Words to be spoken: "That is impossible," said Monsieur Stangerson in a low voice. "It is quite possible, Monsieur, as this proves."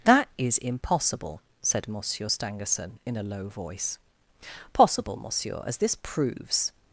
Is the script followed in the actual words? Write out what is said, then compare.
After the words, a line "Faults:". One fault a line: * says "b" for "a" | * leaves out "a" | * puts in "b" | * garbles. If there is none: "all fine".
"That is impossible," said Monsieur Stangerson in a low voice. "possible, Monsieur, as this proves."
Faults:
* leaves out "It is quite"